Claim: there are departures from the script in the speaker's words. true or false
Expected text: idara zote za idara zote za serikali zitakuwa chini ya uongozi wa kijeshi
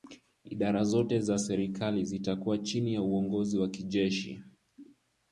true